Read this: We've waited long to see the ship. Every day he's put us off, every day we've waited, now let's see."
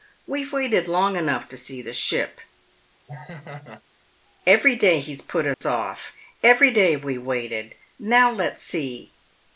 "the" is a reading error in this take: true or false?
false